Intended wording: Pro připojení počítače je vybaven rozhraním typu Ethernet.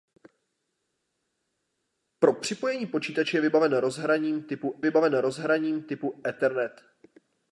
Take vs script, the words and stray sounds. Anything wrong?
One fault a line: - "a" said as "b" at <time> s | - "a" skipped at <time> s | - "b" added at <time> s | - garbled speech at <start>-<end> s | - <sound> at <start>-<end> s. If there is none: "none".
- "vybaven rozhraním typu" added at 4.8 s